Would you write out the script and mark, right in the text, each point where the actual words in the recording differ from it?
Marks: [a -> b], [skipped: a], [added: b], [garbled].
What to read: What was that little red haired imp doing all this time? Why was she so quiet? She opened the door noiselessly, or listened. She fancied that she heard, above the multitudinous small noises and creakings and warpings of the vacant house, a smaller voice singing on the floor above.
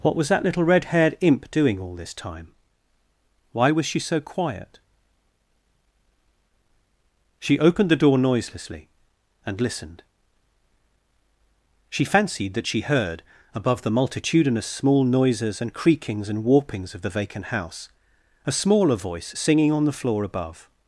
What was that little red haired imp doing all this time? Why was she so quiet? She opened the door noiselessly, [or -> and] listened. She fancied that she heard, above the multitudinous small noises and creakings and warpings of the vacant house, a smaller voice singing on the floor above.